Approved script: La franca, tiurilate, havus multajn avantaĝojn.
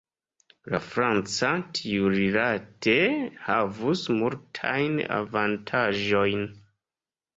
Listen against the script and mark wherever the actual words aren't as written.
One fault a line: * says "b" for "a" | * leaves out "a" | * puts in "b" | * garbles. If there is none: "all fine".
all fine